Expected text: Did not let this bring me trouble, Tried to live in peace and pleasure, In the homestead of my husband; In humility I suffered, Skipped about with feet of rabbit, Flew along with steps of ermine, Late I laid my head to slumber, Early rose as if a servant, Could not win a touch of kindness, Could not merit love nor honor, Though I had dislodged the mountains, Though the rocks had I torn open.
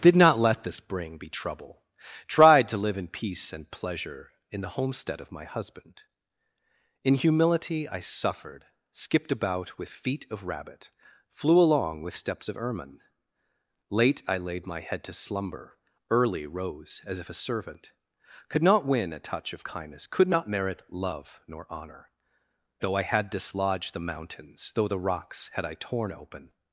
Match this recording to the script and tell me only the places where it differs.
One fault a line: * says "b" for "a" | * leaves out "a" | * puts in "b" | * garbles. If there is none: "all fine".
* says "be" for "me"